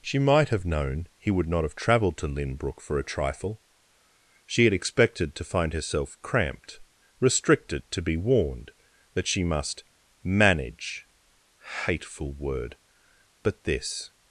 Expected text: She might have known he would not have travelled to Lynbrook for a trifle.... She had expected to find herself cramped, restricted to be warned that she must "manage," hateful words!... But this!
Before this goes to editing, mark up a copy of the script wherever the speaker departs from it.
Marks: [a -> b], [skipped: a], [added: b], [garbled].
She might have known he would not have travelled to Lynbrook for a trifle.... She had expected to find herself cramped, restricted to be warned that she must "manage," hateful [words!... -> word] But this!